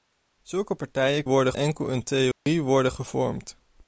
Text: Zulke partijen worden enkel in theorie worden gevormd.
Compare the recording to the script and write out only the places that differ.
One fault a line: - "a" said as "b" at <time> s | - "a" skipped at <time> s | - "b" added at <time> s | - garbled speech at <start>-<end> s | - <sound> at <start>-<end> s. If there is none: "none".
- dropout at 2.3-2.5 s